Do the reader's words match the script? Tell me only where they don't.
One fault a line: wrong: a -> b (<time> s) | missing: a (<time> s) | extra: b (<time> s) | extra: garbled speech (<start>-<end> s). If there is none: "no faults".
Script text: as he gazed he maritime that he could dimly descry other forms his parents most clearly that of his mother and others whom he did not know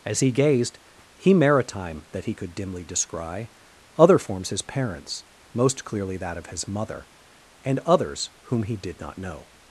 no faults